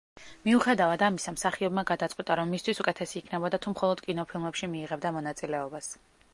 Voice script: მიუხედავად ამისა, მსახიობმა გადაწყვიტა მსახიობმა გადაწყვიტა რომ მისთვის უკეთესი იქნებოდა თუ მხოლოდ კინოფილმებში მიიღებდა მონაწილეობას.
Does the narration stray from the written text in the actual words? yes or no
yes